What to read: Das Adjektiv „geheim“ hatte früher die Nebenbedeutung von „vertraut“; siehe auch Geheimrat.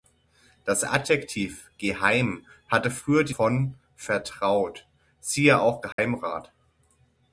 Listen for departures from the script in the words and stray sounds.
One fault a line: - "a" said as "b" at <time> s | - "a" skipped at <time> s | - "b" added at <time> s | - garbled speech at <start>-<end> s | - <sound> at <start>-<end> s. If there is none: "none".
- "Nebenbedeutung" skipped at 3.4 s
- dropout at 5.9-6.0 s